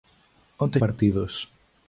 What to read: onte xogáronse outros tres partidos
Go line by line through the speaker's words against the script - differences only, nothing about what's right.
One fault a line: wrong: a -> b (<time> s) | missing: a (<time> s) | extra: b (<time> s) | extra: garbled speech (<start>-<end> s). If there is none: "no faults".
missing: xogáronse outros tres (0.8 s)